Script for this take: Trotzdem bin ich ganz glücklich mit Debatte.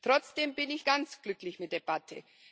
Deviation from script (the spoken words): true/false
false